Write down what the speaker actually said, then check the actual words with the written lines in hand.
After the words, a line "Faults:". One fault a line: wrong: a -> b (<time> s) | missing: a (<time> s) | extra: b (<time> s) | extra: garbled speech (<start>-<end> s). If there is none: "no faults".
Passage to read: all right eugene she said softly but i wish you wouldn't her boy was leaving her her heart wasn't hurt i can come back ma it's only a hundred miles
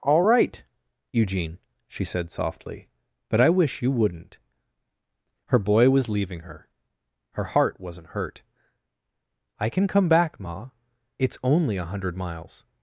all right eugene she said softly but i wish you wouldn't her boy was leaving her her heart wasn't hurt i can come back ma it's only a hundred miles
Faults:
no faults